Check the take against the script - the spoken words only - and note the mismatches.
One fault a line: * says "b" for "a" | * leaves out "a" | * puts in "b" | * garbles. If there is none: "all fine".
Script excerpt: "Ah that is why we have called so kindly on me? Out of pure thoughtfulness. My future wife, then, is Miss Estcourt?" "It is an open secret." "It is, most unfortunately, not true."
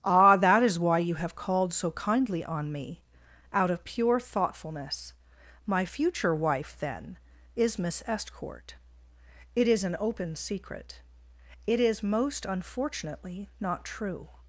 * says "you" for "we"